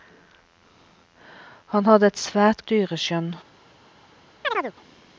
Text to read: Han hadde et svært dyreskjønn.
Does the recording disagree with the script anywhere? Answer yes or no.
no